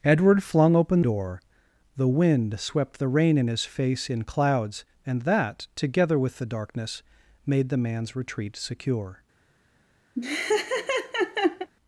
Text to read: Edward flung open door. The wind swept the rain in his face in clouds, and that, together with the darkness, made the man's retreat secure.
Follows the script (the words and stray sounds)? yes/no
no